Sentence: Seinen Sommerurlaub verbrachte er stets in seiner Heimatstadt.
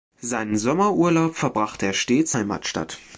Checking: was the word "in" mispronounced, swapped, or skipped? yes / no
yes